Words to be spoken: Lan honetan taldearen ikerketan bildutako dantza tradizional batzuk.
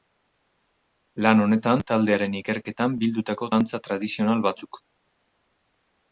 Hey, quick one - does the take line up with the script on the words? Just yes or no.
yes